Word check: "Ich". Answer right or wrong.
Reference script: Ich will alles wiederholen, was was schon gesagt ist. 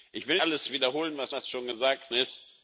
right